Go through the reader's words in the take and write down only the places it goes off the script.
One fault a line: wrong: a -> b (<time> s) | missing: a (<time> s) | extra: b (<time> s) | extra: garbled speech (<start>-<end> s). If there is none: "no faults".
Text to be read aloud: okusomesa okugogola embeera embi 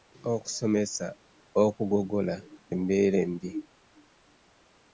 no faults